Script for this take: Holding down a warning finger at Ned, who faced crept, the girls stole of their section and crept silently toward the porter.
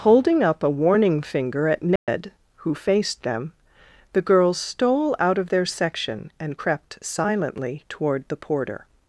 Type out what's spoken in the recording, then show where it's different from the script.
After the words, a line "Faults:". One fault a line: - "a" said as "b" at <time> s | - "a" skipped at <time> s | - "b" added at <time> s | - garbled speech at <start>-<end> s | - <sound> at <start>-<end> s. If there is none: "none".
Holding up a warning finger at Ned, who faced them, the girls stole out of their section and crept silently toward the porter.
Faults:
- "down" said as "up" at 0.4 s
- dropout at 2.0-2.1 s
- "crept" said as "them" at 3.2 s
- "out" added at 5.2 s